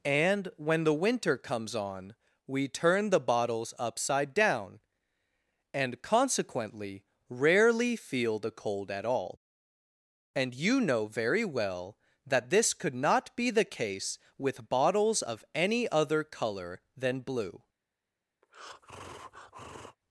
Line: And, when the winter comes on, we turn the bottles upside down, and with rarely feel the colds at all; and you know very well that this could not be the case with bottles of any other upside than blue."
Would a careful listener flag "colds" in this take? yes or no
yes